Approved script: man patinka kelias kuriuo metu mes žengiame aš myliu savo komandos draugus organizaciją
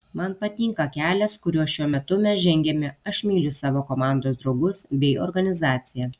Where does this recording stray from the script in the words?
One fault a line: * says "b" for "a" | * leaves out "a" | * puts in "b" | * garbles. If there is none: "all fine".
* puts in "šiuo"
* puts in "bei"